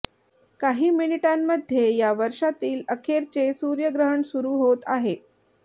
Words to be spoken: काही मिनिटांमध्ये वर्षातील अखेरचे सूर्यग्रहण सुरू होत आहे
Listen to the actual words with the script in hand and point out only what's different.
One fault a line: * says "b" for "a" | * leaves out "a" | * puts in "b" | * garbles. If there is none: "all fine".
* puts in "या"